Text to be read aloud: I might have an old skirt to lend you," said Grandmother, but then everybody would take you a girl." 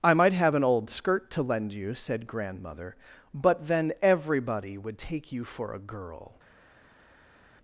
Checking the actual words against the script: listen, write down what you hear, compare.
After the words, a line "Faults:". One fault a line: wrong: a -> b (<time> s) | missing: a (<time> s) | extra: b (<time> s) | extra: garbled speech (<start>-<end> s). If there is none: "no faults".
I might have an old skirt to lend you," said Grandmother, but then everybody would take you for a girl."
Faults:
extra: for (5.4 s)